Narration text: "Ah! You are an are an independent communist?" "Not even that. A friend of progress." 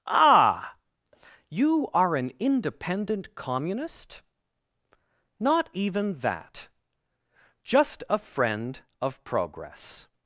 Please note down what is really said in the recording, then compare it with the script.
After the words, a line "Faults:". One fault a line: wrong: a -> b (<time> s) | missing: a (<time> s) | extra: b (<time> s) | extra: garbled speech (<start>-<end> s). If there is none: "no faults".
"Ah! You are an independent communist?" "Not even that. Just a friend of progress."
Faults:
missing: are an (2.3 s)
extra: Just (7.6 s)